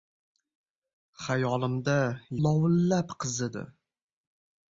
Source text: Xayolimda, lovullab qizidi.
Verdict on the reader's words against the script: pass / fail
pass